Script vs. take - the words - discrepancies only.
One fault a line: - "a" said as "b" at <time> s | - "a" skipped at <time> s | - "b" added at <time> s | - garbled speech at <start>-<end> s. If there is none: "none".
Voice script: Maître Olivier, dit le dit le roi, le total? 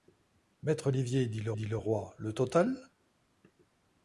none